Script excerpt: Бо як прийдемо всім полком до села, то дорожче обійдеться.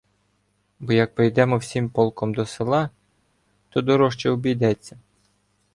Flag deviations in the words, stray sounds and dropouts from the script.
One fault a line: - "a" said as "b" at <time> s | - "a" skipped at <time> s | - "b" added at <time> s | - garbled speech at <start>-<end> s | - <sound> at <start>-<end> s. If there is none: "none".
none